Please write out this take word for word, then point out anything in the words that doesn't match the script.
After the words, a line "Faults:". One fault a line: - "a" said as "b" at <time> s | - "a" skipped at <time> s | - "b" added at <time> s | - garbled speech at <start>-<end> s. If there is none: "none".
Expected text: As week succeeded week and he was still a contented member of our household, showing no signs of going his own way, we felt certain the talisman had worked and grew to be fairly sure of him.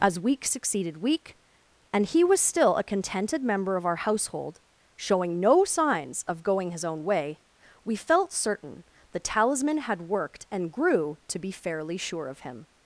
As week succeeded week and he was still a contented member of our household, showing no signs of going his own way, we felt certain the talisman had worked and grew to be fairly sure of him.
Faults:
none